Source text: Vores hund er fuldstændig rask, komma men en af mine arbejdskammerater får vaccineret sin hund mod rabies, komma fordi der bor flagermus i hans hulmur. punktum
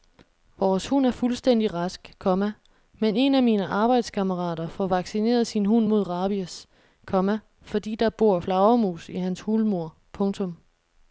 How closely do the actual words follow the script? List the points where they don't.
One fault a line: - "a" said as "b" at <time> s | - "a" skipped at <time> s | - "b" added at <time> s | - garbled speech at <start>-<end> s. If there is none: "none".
none